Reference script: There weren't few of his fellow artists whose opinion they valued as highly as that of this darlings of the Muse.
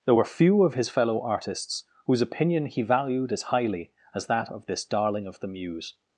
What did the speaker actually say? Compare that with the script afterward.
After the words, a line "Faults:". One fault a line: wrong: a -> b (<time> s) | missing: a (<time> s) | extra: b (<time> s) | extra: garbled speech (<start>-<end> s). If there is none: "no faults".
There were few of his fellow artists whose opinion he valued as highly as that of this darling of the Muse.
Faults:
wrong: weren't -> were (0.1 s)
wrong: they -> he (2.7 s)
wrong: darlings -> darling (4.8 s)